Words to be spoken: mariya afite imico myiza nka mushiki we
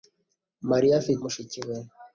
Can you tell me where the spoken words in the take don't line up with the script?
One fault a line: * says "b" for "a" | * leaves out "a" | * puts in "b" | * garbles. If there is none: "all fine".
* leaves out "imico myiza nka"